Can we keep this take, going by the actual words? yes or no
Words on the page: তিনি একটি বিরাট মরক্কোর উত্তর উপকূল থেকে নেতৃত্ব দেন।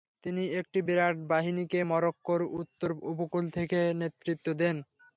no